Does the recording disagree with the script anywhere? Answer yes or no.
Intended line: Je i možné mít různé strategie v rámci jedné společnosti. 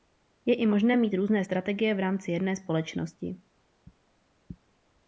no